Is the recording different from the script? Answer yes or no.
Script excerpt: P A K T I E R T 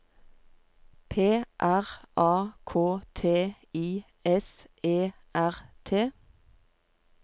yes